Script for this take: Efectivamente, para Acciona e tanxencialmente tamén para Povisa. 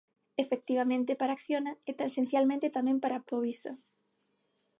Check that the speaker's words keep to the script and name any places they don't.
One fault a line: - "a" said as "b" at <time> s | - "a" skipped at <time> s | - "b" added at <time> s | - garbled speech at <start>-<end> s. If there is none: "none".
none